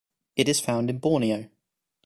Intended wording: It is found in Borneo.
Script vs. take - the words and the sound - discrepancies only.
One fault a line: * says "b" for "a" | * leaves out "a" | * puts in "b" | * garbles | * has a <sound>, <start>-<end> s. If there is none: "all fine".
all fine